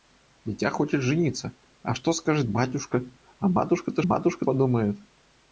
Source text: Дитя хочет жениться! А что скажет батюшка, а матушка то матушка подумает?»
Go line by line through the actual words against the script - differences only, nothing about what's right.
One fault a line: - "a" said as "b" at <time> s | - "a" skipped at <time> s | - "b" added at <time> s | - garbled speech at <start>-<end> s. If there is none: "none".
none